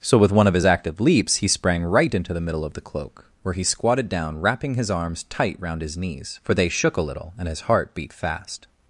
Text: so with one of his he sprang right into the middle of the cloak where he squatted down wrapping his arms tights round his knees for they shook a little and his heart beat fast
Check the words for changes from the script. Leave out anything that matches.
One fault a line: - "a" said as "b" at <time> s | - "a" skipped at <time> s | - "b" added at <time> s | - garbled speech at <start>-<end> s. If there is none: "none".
- "active leaps" added at 0.6 s
- "tights" said as "tight" at 5.2 s